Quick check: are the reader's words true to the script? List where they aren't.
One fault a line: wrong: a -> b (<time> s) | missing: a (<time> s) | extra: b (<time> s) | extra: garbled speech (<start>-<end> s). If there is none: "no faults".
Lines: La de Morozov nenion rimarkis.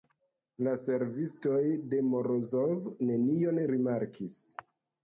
extra: servistoj (0.8 s)